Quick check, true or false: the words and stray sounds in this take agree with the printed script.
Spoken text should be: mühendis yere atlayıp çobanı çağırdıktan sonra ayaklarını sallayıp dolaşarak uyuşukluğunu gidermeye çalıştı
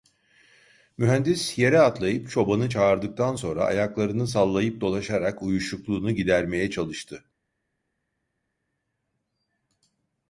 true